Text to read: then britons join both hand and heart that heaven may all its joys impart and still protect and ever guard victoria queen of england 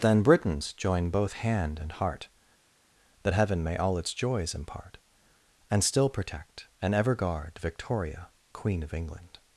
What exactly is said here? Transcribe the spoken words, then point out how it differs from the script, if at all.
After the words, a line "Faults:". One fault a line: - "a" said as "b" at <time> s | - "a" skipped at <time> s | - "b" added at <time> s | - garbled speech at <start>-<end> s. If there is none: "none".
then britons join both hand and heart that heaven may all its joys impart and still protect and ever guard victoria queen of england
Faults:
none